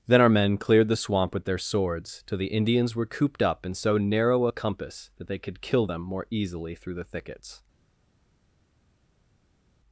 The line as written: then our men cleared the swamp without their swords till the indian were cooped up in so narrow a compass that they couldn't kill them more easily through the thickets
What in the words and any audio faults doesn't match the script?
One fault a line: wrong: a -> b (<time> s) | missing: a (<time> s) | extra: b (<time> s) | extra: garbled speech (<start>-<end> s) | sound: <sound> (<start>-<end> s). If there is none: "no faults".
wrong: without -> with (1.3 s)
wrong: indian -> indians (2.5 s)
wrong: couldn't -> could (5.4 s)